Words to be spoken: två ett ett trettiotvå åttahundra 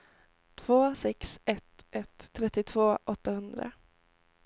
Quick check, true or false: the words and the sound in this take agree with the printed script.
false